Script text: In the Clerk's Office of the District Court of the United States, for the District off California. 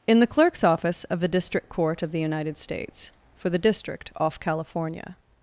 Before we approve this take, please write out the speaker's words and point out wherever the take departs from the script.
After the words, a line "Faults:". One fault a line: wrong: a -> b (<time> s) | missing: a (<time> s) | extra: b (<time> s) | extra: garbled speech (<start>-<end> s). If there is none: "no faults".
In the Clerk's Office of the District Court of the United States, for the District off California.
Faults:
no faults